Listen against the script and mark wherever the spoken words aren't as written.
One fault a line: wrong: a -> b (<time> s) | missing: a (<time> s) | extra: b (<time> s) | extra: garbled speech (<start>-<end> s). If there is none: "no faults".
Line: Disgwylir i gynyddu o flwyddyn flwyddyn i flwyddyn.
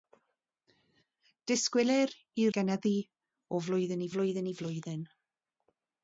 no faults